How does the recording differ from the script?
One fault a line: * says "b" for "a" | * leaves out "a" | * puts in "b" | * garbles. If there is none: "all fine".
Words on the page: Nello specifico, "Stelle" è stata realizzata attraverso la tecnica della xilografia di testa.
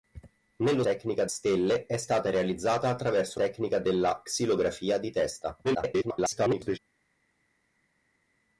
* says "tecnica" for "specifico"
* leaves out "la"
* garbles